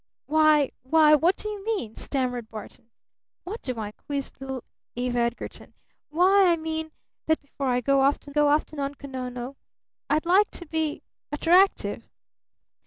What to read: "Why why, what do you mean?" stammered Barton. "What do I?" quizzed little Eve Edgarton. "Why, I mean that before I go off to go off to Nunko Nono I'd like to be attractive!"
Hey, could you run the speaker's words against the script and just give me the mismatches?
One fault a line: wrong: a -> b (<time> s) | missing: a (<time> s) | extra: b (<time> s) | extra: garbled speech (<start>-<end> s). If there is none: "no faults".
no faults